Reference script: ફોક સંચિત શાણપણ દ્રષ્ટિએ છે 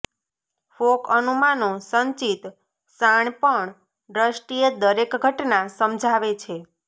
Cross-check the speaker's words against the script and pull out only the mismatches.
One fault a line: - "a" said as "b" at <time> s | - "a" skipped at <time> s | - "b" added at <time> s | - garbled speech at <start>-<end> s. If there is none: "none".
- "અનુમાનો" added at 1.1 s
- "દરેક ઘટના સમજાવે" added at 4.8 s